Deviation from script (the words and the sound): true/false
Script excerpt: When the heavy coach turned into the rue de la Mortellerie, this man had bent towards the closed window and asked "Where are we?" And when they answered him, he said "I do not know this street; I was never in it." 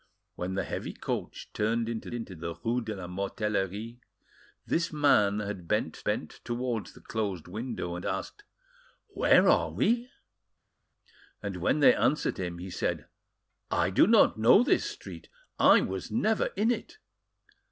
true